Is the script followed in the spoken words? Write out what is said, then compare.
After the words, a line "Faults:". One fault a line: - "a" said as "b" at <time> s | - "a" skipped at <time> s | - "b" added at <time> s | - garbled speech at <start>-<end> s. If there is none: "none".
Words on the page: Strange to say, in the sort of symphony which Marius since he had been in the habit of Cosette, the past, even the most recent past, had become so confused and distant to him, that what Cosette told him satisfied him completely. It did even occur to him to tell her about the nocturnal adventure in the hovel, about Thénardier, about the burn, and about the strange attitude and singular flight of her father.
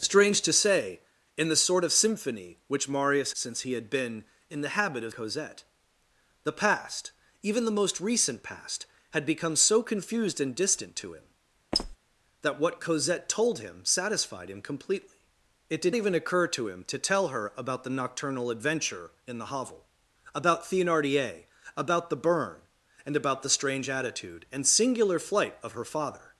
Strange to say, in the sort of symphony which Marius since he had been in the habit of Cosette, the past, even the most recent past, had become so confused and distant to him, that what Cosette told him satisfied him completely. It did even occur to him to tell her about the nocturnal adventure in the hovel, about Thénardier, about the burn, and about the strange attitude and singular flight of her father.
Faults:
none